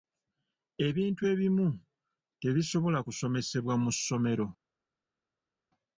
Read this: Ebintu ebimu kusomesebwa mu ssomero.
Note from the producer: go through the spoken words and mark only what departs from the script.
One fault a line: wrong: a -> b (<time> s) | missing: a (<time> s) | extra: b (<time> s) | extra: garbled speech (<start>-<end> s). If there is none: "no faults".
extra: tebisobola (2.4 s)